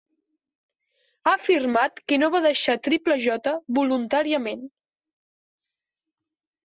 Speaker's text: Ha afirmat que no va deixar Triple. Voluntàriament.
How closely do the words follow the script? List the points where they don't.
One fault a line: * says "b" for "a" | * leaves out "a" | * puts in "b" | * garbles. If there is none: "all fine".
* puts in "J"